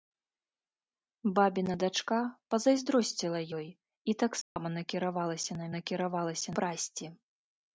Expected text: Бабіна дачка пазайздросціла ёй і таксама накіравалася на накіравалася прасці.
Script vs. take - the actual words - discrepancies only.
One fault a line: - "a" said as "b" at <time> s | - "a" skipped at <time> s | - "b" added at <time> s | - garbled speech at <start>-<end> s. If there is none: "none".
none